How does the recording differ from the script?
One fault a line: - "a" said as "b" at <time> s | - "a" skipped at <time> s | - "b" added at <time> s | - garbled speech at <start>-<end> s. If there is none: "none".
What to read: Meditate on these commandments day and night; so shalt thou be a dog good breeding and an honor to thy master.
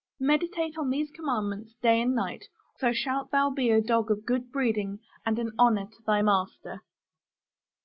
- "of" added at 4.1 s